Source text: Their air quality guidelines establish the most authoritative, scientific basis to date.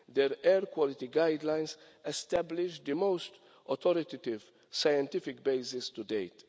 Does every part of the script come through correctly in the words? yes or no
yes